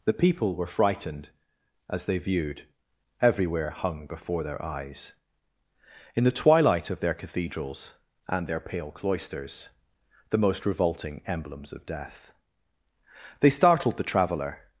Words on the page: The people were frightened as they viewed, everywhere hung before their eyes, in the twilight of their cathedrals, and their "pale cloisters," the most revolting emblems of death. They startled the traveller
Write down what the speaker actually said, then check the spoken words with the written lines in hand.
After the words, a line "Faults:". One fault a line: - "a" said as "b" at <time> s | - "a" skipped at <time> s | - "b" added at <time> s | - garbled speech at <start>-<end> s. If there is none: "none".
The people were frightened as they viewed, everywhere hung before their eyes, in the twilight of their cathedrals, and their "pale cloisters," the most revolting emblems of death. They startled the traveller
Faults:
none